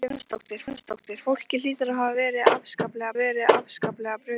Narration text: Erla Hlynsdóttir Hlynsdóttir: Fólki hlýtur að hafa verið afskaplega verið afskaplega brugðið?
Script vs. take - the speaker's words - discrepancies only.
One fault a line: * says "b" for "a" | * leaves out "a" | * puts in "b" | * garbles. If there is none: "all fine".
all fine